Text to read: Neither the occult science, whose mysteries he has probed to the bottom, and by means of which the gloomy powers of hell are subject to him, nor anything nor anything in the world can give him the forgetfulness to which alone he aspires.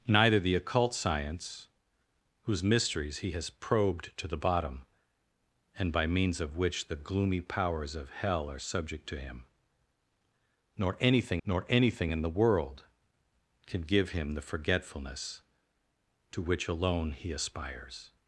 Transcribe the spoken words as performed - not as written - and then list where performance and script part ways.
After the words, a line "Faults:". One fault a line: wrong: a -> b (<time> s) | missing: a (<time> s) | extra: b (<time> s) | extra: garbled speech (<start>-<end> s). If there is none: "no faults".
Neither the occult science, whose mysteries he has probed to the bottom, and by means of which the gloomy powers of hell are subject to him, nor anything nor anything in the world can give him the forgetfulness to which alone he aspires.
Faults:
no faults